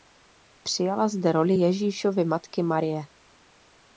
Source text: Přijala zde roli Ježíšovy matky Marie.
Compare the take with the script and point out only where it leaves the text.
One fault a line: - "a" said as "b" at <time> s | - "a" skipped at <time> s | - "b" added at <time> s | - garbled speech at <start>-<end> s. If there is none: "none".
none